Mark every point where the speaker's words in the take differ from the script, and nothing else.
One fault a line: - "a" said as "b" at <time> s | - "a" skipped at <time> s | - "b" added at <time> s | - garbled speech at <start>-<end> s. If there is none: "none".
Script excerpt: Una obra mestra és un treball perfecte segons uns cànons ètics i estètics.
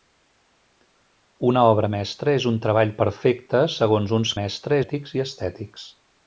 - "cànons" said as "mestra" at 4.4 s